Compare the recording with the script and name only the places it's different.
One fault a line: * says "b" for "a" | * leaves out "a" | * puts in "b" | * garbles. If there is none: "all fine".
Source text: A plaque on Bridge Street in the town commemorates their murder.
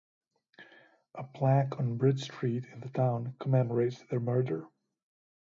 all fine